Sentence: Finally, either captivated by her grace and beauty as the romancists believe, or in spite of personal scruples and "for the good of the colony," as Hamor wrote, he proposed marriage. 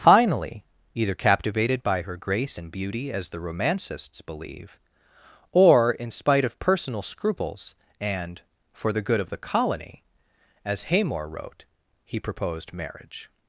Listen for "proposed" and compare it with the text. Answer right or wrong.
right